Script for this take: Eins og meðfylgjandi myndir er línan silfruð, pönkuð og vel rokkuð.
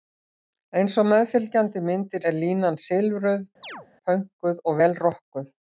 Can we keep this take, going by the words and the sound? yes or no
no